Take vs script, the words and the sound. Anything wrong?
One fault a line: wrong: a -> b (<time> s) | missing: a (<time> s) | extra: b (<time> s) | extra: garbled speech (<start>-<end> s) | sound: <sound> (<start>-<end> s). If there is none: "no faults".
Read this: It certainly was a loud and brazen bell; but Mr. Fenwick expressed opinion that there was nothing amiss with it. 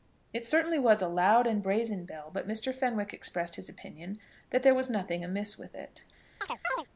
extra: his (3.5 s)
sound: chirp (6.4-6.9 s)